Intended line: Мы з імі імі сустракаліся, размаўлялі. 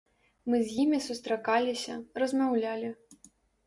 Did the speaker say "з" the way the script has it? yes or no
yes